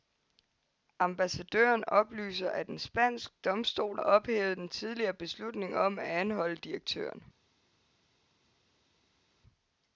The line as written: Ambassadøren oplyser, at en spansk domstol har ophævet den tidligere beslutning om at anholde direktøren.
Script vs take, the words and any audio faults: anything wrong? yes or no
yes